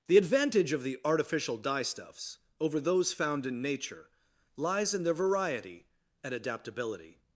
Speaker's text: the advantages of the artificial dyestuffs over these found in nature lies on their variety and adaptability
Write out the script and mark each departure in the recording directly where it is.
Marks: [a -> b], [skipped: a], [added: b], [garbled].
the [advantages -> advantage] of the artificial dyestuffs over [these -> those] found in nature lies [on -> in] their variety and adaptability